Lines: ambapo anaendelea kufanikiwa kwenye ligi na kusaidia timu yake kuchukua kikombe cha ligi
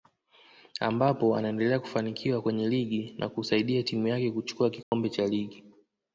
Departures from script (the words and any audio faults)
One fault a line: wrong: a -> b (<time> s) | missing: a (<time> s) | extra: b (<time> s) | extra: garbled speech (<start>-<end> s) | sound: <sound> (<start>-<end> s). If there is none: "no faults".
sound: dropout (4.8-4.9 s)